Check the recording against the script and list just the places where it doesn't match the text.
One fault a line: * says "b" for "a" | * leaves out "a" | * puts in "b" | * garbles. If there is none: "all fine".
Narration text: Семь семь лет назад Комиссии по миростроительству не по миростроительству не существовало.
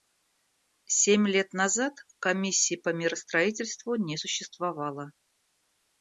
* leaves out "семь"
* leaves out "по миростроительству не"